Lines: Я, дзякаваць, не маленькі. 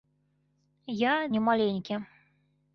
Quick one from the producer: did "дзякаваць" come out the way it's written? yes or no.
no